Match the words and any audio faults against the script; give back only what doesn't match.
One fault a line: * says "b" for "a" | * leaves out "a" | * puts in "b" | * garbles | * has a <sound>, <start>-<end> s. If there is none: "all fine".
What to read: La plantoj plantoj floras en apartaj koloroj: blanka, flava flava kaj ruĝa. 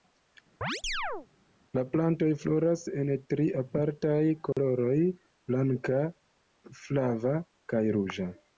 * has a chirp, 0.6-1.3 s
* leaves out "plantoj"
* puts in "tri"
* has a dropout, 4.5-4.6 s
* leaves out "flava"